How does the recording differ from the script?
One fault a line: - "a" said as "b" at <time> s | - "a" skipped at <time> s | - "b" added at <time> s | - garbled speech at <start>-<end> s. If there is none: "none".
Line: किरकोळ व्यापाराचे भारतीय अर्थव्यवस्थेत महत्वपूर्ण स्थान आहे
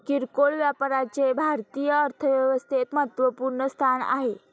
none